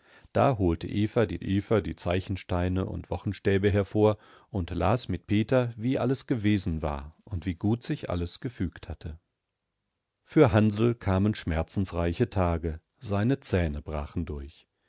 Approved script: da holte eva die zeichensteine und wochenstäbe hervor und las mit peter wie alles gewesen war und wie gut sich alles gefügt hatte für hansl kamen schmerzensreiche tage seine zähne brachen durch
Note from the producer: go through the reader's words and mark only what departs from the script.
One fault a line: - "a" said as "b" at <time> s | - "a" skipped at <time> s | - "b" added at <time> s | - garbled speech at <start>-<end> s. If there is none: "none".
- "eva die" added at 1.4 s